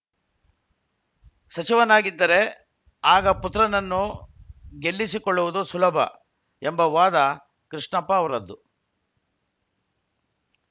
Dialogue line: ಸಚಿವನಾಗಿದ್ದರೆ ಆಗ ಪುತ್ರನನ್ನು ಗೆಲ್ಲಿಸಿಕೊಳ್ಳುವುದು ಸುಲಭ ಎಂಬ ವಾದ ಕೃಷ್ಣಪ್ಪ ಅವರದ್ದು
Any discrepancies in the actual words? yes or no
no